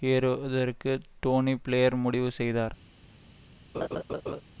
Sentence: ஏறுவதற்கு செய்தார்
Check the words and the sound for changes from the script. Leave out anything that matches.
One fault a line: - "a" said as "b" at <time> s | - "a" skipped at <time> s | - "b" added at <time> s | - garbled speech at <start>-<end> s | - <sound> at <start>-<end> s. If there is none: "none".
- "டோனி பிளேயர் முடிவு" added at 1.2 s
- laugh at 3.7-4.4 s